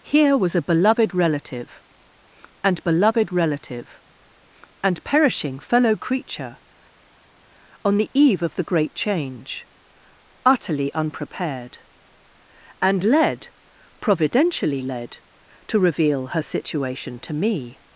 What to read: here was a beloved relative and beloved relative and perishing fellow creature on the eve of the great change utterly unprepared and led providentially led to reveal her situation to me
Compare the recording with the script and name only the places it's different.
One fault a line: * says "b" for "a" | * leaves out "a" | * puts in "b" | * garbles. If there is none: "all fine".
all fine